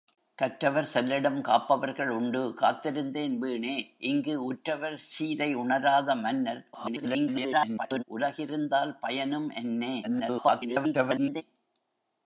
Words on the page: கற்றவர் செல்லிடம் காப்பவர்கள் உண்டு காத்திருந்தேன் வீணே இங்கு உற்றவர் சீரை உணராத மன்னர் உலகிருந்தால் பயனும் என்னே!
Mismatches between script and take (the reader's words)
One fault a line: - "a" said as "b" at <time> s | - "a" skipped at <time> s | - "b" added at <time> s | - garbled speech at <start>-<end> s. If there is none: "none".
- garbled speech at 6.7-8.0 s
- garbled speech at 10.0-11.4 s